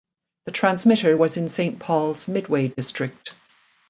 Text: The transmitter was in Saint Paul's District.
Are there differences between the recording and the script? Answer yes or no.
yes